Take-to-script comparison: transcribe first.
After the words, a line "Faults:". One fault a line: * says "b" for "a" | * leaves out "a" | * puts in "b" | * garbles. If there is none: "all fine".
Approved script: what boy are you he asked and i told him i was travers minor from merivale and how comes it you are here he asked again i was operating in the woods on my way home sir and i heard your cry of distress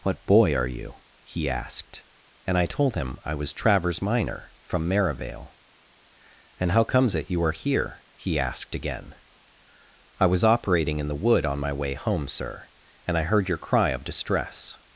what boy are you he asked and i told him i was travers minor from merivale and how comes it you are here he asked again i was operating in the wood on my way home sir and i heard your cry of distress
Faults:
* says "wood" for "woods"